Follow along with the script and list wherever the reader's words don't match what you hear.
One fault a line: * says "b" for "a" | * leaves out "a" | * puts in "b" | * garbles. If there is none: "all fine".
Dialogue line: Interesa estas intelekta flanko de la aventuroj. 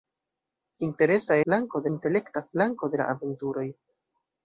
* says "flanko" for "estas"